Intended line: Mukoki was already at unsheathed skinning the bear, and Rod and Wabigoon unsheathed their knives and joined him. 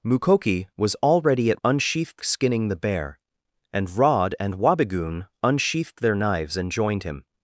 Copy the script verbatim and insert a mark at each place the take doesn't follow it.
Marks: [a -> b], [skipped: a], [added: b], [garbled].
Mukoki was already at unsheathed skinning the bear, and Rod and Wabigoon unsheathed their knives and joined him.